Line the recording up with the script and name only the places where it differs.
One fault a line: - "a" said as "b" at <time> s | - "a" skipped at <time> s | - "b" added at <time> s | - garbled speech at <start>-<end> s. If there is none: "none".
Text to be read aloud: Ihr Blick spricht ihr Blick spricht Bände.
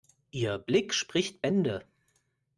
- "ihr Blick spricht" skipped at 1.4 s